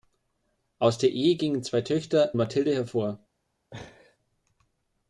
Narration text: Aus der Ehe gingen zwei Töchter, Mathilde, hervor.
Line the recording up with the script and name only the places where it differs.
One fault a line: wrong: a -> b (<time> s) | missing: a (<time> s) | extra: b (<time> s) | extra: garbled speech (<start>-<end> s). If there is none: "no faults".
no faults